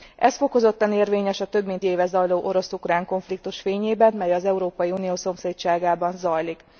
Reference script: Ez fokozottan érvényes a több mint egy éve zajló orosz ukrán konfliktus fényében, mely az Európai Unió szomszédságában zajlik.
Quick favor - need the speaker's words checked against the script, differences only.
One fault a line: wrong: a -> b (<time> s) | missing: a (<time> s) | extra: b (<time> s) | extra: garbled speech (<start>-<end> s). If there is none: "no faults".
missing: egy (1.9 s)